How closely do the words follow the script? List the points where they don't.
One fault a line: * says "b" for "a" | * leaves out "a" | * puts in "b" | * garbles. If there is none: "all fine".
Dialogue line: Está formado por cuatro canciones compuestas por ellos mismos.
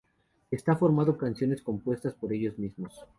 * leaves out "por cuatro"